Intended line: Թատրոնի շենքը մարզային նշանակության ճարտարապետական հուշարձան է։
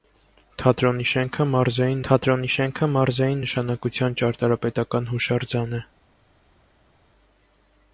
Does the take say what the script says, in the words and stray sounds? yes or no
no